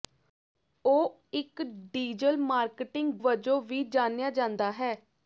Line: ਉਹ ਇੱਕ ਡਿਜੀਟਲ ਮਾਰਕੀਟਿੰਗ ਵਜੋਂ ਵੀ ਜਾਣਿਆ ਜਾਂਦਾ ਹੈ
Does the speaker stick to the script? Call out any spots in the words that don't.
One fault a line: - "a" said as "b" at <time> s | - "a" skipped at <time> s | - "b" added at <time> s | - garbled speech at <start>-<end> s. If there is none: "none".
none